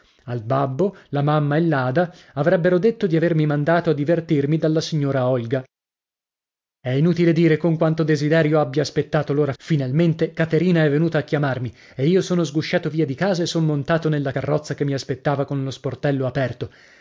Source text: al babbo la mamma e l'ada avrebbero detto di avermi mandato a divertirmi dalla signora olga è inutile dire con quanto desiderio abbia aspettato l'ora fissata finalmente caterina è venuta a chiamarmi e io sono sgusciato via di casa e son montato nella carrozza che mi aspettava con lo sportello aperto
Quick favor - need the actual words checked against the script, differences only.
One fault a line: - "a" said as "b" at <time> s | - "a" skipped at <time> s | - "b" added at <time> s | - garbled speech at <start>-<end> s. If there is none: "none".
- "fissata" skipped at 9.5 s